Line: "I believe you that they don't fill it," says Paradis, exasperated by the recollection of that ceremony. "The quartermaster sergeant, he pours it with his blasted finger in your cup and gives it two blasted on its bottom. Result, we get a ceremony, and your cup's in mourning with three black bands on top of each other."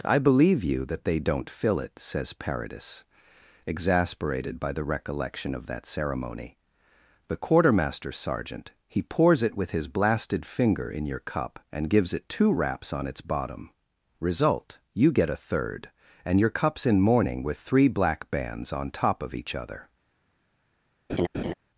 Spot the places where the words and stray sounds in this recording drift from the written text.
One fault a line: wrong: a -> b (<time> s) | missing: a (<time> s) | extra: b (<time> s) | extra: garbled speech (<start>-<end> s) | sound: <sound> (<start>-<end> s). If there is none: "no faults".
wrong: blasted -> raps (12.5 s)
wrong: we -> you (14.9 s)
wrong: ceremony -> third (15.3 s)
sound: laugh (21.1-21.5 s)